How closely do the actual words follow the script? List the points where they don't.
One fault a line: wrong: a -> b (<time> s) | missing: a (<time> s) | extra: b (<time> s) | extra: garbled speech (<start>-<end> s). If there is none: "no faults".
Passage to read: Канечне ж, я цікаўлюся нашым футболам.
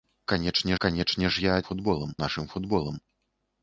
extra: канечне (0.8 s)
wrong: цікаўлюся -> футболам (1.7 s)